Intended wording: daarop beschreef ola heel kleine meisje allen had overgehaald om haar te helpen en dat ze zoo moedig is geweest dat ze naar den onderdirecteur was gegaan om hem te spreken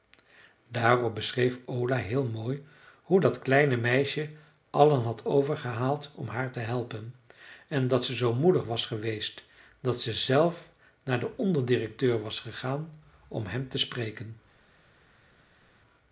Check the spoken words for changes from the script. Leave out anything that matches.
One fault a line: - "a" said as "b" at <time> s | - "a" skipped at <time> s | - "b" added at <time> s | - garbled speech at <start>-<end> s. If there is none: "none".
- "mooi hoe dat" added at 2.3 s
- "is" said as "was" at 8.6 s
- "zelf" added at 10.1 s